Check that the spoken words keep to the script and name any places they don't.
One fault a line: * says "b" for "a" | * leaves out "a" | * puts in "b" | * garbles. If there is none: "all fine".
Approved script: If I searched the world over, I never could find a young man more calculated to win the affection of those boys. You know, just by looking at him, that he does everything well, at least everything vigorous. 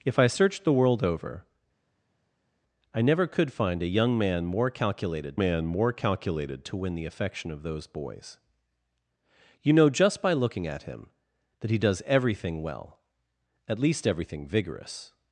* puts in "man more calculated"